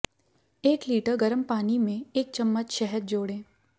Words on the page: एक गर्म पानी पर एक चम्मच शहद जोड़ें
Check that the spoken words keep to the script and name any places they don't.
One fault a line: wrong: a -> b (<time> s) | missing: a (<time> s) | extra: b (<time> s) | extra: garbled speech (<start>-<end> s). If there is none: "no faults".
extra: लीटर (0.9 s)
wrong: पर -> में (1.8 s)